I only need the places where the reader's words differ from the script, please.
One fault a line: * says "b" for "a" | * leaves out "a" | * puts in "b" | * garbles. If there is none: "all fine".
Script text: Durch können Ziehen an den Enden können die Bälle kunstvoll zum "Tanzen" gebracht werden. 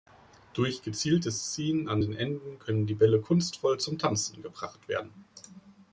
* says "gezieltes" for "können"